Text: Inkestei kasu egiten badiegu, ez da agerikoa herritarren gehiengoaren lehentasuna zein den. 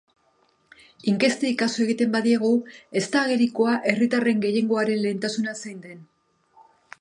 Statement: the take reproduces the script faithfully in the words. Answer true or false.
true